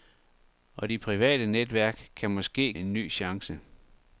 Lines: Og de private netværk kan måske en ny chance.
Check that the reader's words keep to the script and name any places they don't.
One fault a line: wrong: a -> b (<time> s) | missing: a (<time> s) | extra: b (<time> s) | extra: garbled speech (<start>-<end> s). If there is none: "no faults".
no faults